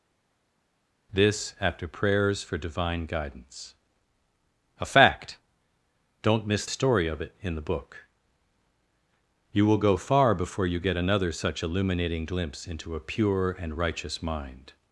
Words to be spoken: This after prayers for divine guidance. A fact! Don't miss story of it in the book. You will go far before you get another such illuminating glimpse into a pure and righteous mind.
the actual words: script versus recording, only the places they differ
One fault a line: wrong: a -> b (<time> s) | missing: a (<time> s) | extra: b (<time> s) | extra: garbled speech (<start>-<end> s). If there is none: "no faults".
no faults